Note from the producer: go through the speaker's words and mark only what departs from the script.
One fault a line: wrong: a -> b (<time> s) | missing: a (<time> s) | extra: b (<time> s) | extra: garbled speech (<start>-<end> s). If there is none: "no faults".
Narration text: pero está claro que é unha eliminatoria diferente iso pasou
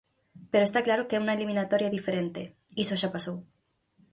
extra: xa (3.0 s)